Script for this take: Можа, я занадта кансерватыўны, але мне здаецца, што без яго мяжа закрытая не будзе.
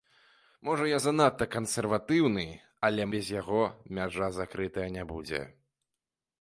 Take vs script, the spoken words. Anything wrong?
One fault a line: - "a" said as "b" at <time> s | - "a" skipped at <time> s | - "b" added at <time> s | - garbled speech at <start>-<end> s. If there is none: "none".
- "мне здаецца што" skipped at 3.1 s